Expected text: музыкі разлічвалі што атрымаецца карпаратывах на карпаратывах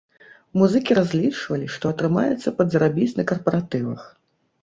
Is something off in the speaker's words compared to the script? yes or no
yes